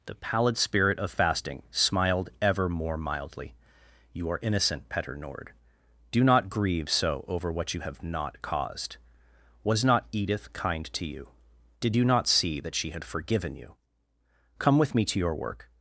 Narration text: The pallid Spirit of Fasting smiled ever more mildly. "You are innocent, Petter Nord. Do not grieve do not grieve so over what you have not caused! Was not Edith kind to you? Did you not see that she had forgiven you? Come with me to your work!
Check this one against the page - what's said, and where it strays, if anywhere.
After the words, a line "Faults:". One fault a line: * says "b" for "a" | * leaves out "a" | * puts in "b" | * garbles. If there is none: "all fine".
The pallid Spirit of Fasting smiled ever more mildly. "You are innocent, Petter Nord. Do not grieve so over what you have not caused! Was not Edith kind to you? Did you not see that she had forgiven you? Come with me to your work!
Faults:
* leaves out "do not grieve"